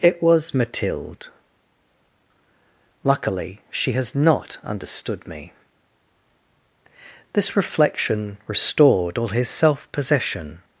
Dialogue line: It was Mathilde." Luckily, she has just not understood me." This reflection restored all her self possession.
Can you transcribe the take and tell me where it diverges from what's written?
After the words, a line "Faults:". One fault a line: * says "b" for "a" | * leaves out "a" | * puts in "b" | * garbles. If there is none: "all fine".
It was Mathilde." Luckily, she has not understood me." This reflection restored all his self possession.
Faults:
* leaves out "just"
* says "his" for "her"